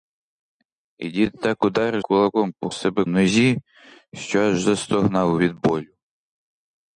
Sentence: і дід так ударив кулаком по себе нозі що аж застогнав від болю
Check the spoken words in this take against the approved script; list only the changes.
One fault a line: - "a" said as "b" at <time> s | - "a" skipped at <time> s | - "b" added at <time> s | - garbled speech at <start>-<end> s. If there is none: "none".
none